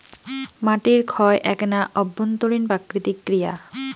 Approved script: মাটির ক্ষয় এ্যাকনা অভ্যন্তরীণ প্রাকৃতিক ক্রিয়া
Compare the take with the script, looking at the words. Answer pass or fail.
pass